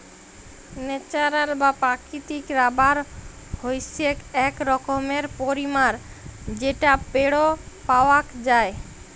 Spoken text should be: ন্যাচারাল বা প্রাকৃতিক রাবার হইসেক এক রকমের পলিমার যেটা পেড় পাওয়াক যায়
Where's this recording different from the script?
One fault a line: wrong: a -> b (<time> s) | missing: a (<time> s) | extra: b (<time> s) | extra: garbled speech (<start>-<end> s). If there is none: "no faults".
no faults